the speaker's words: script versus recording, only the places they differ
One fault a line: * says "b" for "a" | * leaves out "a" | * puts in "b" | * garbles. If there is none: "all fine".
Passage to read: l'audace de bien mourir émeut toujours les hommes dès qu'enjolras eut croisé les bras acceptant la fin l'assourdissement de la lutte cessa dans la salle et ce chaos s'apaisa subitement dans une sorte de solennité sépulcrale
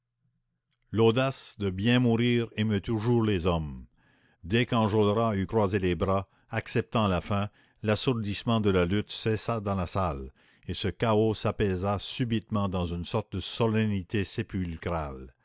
all fine